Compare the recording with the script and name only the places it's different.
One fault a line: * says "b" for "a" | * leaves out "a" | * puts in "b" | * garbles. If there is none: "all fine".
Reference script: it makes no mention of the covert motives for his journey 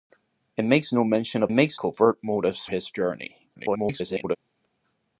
* says "makes" for "the"
* leaves out "for"
* garbles